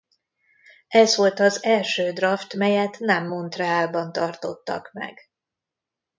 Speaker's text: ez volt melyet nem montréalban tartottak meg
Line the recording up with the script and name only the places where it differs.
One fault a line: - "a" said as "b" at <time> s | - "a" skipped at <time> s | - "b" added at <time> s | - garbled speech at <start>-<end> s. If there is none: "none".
- "az első draft" added at 1.4 s